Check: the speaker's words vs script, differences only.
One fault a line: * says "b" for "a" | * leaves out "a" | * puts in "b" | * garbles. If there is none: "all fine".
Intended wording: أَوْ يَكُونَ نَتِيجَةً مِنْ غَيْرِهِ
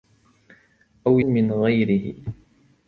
* leaves out "يَكُونَ نَتِيجَةً"